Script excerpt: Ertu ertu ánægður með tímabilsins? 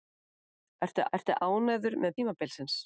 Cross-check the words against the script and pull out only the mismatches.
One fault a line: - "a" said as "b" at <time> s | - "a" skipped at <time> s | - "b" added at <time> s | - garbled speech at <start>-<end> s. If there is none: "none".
none